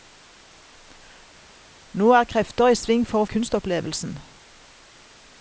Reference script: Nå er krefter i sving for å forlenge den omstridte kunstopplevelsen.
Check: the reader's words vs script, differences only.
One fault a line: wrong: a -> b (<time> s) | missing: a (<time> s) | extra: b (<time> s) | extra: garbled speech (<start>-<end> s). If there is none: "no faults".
missing: forlenge den omstridte (3.3 s)